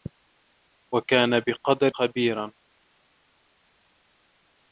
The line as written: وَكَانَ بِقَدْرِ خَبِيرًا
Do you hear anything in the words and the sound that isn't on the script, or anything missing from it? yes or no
no